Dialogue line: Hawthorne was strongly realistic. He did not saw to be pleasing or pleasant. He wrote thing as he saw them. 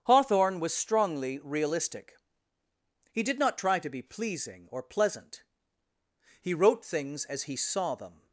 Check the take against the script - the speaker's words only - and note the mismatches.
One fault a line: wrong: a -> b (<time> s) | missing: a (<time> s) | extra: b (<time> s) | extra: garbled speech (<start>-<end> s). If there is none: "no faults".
wrong: saw -> try (3.6 s)
wrong: thing -> things (6.8 s)